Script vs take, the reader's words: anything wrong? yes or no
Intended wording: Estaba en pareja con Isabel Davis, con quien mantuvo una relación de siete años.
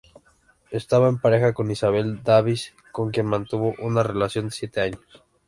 no